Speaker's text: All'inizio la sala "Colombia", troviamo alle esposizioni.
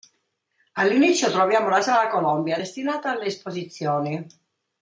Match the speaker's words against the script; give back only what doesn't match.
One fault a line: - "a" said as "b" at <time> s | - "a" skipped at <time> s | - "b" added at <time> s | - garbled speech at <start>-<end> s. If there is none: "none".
- "troviamo" added at 1.3 s
- "troviamo" said as "destinata" at 2.5 s